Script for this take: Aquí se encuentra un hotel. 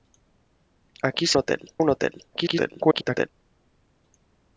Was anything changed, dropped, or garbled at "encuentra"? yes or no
yes